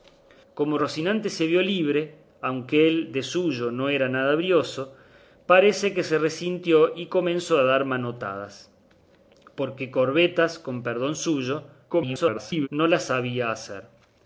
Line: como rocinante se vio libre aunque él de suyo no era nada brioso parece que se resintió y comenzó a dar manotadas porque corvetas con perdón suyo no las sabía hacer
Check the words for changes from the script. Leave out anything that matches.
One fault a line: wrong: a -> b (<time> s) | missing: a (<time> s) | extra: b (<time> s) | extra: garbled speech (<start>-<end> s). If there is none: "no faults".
extra: garbled speech (11.9-12.7 s)